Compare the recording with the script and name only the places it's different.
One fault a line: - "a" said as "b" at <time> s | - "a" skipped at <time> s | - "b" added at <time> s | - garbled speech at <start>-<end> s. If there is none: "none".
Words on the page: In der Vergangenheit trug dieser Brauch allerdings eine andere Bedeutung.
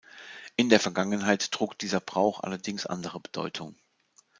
- "eine" skipped at 2.9 s